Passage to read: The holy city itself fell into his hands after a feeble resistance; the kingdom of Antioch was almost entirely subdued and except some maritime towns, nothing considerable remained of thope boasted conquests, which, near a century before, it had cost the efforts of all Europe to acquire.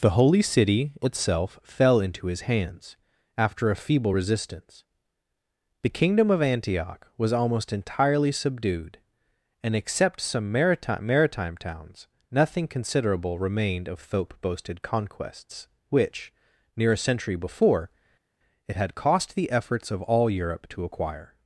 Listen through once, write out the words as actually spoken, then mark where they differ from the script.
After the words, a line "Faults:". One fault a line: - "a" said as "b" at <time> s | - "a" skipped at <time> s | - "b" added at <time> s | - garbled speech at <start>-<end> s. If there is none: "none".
The holy city itself fell into his hands after a feeble resistance; the kingdom of Antioch was almost entirely subdued and except some maritime maritime towns, nothing considerable remained of thope boasted conquests, which, near a century before, it had cost the efforts of all Europe to acquire.
Faults:
- "maritime" added at 11.1 s